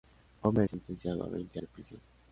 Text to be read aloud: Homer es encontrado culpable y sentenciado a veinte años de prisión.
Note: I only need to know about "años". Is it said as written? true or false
false